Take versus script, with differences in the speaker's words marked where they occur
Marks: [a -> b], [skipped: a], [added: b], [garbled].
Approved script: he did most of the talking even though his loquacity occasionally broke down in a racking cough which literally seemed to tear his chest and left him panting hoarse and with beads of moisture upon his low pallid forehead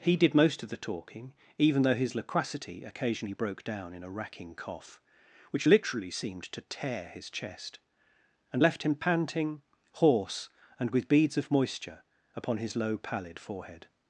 he did most of the talking even though his loquacity occasionally broke down in a racking cough which literally seemed to tear his chest and left him panting hoarse and with beads of moisture upon his low pallid forehead